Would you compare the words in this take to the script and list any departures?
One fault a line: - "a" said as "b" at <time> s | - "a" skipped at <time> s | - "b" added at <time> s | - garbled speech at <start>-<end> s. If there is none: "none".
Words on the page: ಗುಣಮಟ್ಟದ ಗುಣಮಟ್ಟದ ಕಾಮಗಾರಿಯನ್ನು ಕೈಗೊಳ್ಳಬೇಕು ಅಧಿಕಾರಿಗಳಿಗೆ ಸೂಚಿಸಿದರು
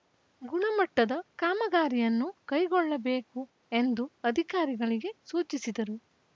- "ಗುಣಮಟ್ಟದ" skipped at 1.1 s
- "ಎಂದು" added at 3.7 s